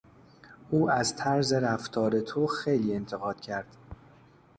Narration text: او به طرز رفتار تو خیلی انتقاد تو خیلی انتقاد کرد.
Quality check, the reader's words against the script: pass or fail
fail